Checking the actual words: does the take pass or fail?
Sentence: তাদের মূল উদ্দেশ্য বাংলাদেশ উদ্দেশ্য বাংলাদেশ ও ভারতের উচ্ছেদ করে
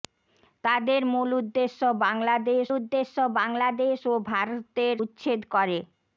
pass